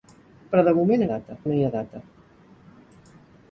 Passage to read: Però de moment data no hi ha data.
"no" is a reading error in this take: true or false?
false